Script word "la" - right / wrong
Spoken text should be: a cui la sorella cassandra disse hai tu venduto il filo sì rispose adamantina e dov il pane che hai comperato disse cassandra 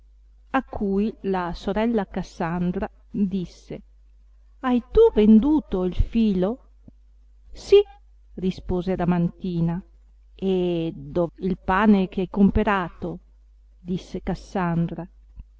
right